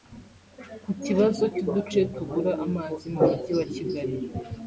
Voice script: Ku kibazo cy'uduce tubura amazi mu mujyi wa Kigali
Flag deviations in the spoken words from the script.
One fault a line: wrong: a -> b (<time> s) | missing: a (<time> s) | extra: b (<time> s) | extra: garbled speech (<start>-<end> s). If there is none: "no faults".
no faults